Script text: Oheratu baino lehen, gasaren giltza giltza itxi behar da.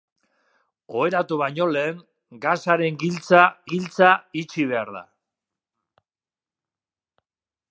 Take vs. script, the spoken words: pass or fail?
pass